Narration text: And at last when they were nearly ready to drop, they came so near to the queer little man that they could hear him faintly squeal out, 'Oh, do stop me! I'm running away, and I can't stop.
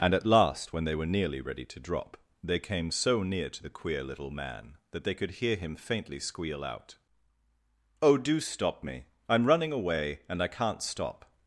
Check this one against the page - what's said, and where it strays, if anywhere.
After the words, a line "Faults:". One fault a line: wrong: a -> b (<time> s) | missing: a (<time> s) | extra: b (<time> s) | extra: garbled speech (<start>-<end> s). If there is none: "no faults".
And at last when they were nearly ready to drop, they came so near to the queer little man that they could hear him faintly squeal out, 'Oh, do stop me! I'm running away, and I can't stop.
Faults:
no faults